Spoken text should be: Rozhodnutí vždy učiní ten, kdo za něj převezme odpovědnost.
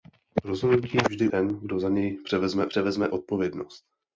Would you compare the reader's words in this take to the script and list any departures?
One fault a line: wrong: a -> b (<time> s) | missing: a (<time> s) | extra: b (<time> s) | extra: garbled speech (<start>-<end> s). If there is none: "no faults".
missing: učiní (1.3 s)
extra: převezme (2.7 s)